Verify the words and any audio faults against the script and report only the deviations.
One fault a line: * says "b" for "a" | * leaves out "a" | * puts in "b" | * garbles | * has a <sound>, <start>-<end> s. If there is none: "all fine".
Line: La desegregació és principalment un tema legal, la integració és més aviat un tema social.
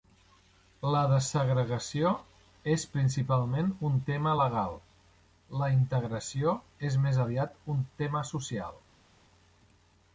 all fine